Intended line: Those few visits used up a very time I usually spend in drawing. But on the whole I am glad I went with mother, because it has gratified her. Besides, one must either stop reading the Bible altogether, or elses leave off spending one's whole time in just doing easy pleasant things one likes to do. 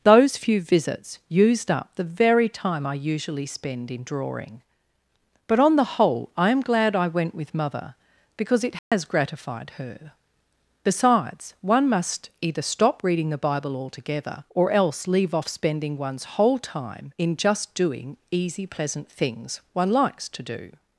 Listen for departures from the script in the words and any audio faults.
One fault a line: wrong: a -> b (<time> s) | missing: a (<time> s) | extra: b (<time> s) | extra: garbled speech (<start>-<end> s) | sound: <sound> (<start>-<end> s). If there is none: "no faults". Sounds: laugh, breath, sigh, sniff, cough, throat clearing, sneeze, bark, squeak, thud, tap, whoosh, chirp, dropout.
wrong: a -> the (1.9 s)
sound: dropout (8.8-8.9 s)
wrong: elses -> else (14.7 s)